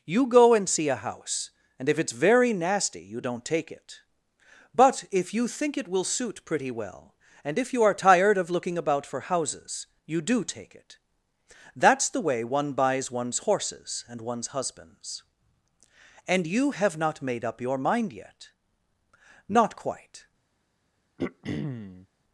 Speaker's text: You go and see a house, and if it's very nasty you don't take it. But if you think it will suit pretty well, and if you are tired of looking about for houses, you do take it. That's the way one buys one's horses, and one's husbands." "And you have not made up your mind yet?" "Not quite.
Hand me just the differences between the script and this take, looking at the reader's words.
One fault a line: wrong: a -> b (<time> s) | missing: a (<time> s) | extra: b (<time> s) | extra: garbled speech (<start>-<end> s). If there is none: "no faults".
no faults